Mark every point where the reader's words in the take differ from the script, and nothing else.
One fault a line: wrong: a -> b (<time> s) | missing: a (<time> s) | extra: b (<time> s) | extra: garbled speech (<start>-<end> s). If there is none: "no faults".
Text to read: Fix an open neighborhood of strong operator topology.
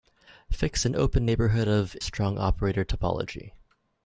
no faults